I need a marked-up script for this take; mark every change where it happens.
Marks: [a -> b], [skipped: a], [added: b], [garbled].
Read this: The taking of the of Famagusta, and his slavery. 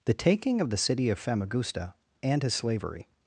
The taking of the [added: city] of Famagusta, and his slavery.